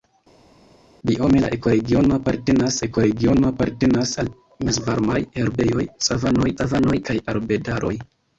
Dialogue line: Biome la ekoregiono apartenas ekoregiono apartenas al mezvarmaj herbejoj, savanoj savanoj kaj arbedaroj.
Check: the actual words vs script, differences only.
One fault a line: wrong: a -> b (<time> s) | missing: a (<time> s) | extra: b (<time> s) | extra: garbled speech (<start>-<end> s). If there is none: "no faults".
no faults